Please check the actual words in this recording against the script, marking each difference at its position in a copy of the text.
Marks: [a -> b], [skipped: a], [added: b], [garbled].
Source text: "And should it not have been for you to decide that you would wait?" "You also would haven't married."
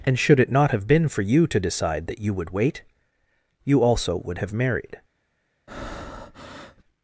"And should it not have been for you to decide that you would wait?" "You also would [haven't -> have] married."